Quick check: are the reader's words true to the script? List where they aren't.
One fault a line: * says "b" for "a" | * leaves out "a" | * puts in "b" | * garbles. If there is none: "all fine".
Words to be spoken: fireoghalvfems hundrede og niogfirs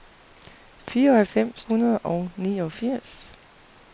all fine